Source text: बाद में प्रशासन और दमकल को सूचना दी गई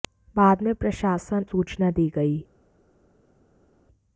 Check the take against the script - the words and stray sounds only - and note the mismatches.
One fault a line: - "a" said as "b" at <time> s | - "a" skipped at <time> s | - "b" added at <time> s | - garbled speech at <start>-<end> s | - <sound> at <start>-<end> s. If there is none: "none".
- "और दमकल को" skipped at 1.4 s